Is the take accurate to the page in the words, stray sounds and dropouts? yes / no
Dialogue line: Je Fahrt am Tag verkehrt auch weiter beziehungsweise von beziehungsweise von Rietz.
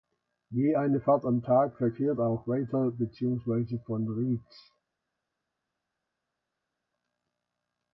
no